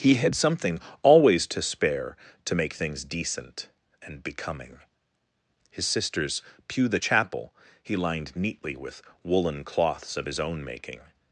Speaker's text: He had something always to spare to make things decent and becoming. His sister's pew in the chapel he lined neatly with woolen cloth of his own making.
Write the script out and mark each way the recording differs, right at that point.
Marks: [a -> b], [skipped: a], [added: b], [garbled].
He had something always to spare to make things decent and becoming. His sister's pew [skipped: in] the chapel he lined neatly with woolen [cloth -> cloths] of his own making.